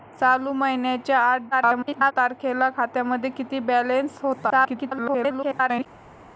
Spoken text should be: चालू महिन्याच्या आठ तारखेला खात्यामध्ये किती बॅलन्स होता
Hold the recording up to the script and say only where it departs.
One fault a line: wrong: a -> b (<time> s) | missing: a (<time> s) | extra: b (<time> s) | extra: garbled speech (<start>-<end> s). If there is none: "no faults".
extra: garbled speech (1.5-2.1 s)
extra: garbled speech (4.5-5.9 s)